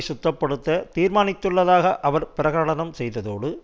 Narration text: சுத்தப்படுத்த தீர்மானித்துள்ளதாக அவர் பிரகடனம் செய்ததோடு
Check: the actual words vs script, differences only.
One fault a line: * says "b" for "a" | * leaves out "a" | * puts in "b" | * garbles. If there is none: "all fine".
all fine